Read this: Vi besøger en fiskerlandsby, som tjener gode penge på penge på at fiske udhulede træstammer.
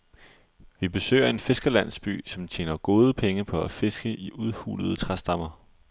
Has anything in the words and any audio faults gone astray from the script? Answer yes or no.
yes